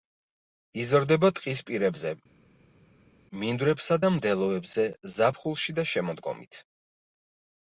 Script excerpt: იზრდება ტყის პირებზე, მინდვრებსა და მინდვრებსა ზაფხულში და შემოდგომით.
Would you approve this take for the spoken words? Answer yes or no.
no